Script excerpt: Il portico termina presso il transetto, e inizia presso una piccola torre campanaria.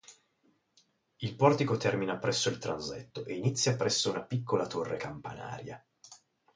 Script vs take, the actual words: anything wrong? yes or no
no